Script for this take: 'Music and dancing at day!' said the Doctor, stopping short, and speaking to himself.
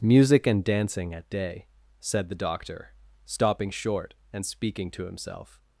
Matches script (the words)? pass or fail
pass